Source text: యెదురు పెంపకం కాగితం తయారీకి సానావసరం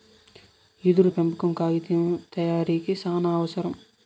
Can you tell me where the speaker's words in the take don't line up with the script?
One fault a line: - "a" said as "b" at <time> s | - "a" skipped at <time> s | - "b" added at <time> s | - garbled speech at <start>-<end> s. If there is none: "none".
none